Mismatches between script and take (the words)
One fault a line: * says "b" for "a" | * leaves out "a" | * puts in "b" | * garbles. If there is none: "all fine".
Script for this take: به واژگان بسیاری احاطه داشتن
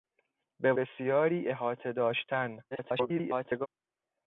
* leaves out "واژگان"
* garbles